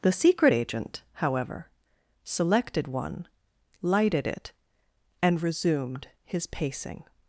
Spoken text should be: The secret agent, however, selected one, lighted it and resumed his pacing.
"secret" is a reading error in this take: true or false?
false